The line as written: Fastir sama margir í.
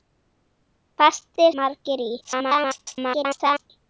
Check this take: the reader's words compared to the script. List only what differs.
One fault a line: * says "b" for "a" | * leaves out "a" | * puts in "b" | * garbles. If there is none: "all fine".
* leaves out "sama"
* garbles